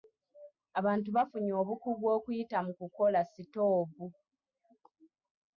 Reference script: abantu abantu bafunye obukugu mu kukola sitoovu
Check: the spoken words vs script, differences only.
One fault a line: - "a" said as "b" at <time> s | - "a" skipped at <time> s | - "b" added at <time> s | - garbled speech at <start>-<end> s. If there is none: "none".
- "abantu" skipped at 1.1 s
- "okuyita" added at 2.2 s